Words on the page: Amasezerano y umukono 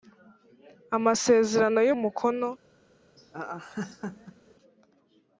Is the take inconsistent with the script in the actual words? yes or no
no